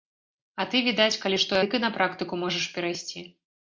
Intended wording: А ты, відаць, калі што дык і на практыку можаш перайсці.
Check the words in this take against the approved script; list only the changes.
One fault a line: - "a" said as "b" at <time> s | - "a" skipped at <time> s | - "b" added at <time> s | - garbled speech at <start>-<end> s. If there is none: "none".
none